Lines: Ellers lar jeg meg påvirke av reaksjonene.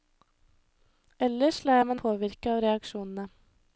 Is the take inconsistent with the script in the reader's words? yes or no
no